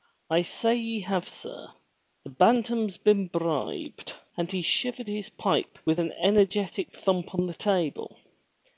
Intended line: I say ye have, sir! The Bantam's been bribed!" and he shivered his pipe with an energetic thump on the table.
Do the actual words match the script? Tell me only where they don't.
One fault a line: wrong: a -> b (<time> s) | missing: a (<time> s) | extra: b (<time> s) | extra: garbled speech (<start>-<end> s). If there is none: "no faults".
no faults